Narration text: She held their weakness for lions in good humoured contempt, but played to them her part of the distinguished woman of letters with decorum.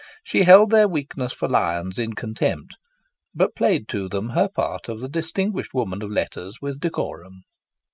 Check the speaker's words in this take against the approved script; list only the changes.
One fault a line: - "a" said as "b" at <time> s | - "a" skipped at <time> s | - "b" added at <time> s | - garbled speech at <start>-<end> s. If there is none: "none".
- "good humoured" skipped at 2.1 s